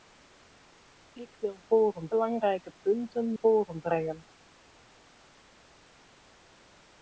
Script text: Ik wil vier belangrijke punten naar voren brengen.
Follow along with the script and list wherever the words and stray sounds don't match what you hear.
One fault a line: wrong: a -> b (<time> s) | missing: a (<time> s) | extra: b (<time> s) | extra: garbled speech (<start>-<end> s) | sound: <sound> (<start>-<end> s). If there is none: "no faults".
wrong: vier -> voren (1.6 s)
missing: naar (3.3 s)